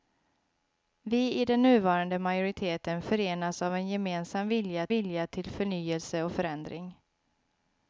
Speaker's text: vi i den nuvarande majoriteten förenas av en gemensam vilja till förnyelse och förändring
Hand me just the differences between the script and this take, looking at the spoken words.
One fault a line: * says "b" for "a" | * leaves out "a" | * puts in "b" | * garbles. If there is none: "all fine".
* puts in "vilja"